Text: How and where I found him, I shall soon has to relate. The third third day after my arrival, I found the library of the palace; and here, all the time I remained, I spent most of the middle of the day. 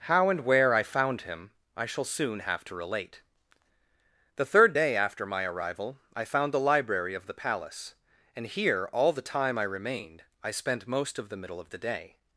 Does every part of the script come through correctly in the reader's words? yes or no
no